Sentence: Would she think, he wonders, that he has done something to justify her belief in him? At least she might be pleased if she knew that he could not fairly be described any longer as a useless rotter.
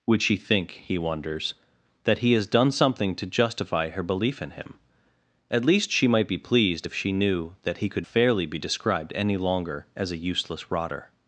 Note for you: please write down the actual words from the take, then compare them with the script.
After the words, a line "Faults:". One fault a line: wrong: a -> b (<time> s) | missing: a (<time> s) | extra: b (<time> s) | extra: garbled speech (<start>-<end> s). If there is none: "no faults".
Would she think, he wonders, that he has done something to justify her belief in him? At least she might be pleased if she knew that he could fairly be described any longer as a useless rotter.
Faults:
missing: not (8.1 s)